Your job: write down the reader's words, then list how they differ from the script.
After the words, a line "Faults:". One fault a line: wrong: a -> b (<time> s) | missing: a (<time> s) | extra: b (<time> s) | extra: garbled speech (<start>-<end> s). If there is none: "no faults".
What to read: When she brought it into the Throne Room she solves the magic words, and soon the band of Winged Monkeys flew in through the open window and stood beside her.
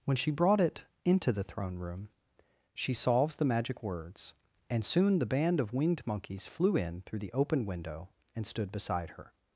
When she brought it into the Throne Room she solves the magic words, and soon the band of Winged Monkeys flew in through the open window and stood beside her.
Faults:
no faults